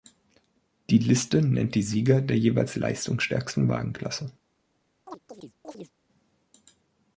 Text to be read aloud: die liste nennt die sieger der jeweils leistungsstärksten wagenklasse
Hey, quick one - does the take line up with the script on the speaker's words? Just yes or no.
yes